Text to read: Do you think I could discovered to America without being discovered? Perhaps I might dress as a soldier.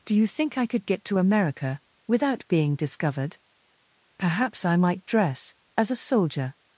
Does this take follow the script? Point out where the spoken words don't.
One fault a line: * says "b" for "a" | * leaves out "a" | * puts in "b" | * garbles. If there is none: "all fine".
* says "get" for "discovered"